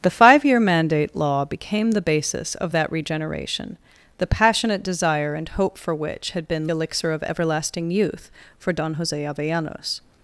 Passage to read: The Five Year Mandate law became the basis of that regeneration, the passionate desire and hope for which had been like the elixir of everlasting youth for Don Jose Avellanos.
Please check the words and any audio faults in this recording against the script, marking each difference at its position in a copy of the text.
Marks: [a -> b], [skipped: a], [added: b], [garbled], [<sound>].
The Five Year Mandate law became the basis of that regeneration, the passionate desire and hope for which had been [skipped: like the] elixir of everlasting youth for Don Jose Avellanos.